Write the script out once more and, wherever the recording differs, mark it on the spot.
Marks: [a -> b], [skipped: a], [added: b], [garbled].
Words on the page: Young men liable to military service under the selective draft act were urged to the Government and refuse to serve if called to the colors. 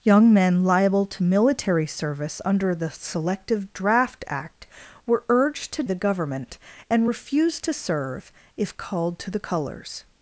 Young men liable to military service under the selective draft act were urged to the Government and refuse to serve if called to the colors.